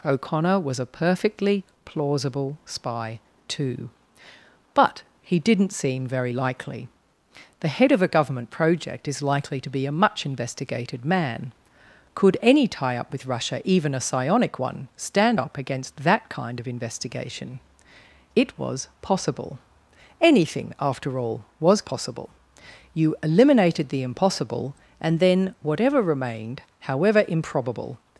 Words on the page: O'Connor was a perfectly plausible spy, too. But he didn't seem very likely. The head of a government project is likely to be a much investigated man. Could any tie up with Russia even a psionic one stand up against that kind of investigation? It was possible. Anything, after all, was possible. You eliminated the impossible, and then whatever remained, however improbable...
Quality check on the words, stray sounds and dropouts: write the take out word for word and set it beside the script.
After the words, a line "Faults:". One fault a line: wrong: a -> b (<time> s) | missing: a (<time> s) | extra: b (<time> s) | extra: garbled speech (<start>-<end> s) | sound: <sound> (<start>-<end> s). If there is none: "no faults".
O'Connor was a perfectly plausible spy, too. But he didn't seem very likely. The head of a government project is likely to be a much investigated man. Could any tie up with Russia even a psionic one stand up against that kind of investigation? It was possible. Anything, after all, was possible. You eliminated the impossible, and then whatever remained, however improbable...
Faults:
no faults